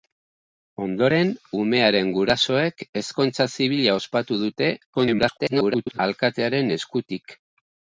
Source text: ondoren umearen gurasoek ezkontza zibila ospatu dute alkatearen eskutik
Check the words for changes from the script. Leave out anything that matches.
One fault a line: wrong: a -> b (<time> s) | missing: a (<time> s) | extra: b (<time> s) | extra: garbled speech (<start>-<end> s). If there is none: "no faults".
extra: garbled speech (4.9-6.0 s)